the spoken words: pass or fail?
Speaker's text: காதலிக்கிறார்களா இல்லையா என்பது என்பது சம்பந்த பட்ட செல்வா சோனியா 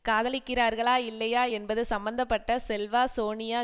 fail